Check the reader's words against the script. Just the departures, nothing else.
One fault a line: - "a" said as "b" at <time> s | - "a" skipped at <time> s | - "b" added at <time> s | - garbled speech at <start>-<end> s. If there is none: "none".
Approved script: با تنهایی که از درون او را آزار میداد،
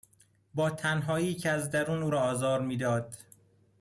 none